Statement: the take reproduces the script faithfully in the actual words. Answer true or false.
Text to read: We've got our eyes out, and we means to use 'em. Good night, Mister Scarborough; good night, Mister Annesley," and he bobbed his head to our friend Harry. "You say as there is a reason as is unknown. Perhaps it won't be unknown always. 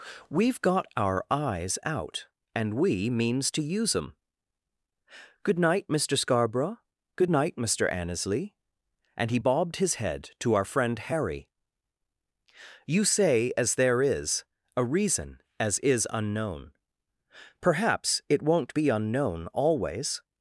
true